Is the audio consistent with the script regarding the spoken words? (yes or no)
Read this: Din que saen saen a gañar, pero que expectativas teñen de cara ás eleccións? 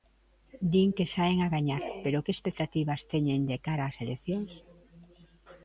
no